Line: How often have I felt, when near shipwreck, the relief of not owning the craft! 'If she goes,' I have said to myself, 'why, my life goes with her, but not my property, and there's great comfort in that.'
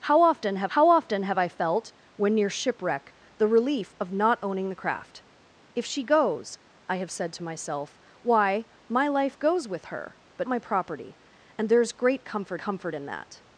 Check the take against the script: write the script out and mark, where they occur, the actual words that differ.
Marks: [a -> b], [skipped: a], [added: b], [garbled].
How often have [added: how often have] I felt, when near shipwreck, the relief of not owning the craft! 'If she goes,' I have said to myself, 'why, my life goes with her, but [skipped: not] my property, and there's great comfort [added: comfort] in that.'